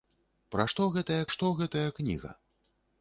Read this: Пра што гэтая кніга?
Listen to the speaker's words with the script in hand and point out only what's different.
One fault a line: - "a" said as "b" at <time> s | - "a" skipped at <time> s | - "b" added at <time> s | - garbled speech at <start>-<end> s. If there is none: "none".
- "што гэтая" added at 1.4 s